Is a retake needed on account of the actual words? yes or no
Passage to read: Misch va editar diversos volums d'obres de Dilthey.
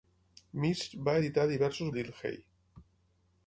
yes